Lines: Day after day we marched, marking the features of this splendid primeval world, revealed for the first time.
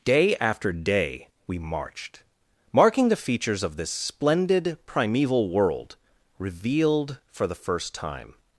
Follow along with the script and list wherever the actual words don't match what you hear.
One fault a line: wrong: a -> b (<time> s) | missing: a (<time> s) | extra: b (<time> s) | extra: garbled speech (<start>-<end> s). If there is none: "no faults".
no faults